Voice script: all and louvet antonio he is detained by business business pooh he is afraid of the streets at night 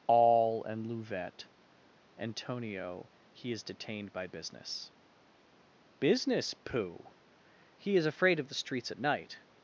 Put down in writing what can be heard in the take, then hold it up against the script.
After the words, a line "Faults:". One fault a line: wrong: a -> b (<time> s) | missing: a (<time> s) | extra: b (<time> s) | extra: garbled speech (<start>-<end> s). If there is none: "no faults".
all and louvet antonio he is detained by business business pooh he is afraid of the streets at night
Faults:
no faults